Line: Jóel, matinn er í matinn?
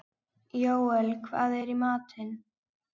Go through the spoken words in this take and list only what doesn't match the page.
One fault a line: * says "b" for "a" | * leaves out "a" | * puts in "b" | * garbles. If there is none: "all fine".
* says "hvað" for "matinn"